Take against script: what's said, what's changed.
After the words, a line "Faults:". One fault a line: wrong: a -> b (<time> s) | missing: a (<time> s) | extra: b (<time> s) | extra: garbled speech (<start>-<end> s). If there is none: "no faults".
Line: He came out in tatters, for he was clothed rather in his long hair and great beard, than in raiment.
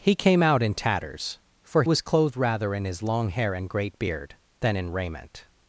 He came out in tatters, for was clothed rather in his long hair and great beard, than in raiment.
Faults:
missing: he (1.8 s)